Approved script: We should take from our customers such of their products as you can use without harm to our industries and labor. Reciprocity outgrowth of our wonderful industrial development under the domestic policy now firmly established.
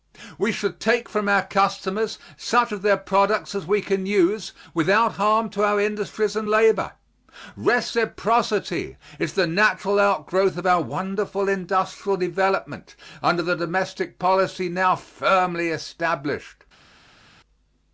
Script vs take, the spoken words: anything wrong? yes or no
yes